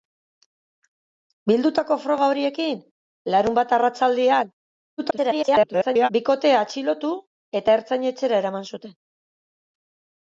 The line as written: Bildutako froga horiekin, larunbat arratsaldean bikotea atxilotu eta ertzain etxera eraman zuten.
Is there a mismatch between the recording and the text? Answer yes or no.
yes